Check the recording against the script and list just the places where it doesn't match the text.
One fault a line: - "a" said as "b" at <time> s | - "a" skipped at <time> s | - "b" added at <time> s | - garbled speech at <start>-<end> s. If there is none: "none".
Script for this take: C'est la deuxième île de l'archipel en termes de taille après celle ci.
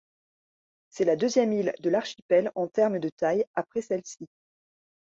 none